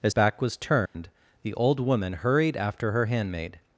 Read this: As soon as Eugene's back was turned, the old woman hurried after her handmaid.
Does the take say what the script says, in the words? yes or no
no